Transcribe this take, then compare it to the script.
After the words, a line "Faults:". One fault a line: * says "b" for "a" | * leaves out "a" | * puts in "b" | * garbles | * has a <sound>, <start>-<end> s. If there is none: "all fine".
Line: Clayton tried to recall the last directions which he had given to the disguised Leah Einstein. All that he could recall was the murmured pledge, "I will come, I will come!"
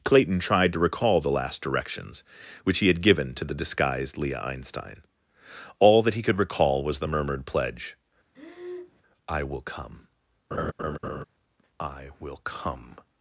Clayton tried to recall the last directions which he had given to the disguised Leah Einstein. All that he could recall was the murmured pledge, "I will come, I will come!"
Faults:
* has a breath, 8.3-9.0 s
* has a laugh, 10.5-11.2 s